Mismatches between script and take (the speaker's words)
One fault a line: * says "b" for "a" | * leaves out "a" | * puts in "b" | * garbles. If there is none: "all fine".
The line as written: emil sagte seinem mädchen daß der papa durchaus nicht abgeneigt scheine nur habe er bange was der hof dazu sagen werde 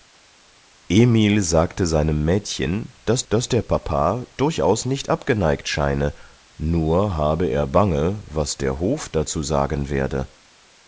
* puts in "daß"